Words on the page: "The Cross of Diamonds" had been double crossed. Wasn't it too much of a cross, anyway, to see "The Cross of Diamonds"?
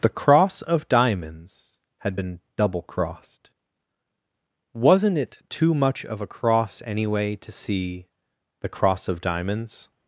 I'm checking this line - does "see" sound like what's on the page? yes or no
yes